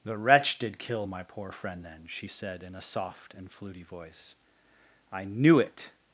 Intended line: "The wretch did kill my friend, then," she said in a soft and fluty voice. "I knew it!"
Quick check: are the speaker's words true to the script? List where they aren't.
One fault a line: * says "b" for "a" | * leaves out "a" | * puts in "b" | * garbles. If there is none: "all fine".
* puts in "poor"